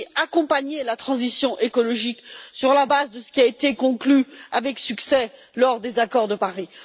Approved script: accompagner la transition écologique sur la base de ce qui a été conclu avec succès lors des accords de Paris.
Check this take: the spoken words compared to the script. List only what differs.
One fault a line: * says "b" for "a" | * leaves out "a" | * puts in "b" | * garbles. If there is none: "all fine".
all fine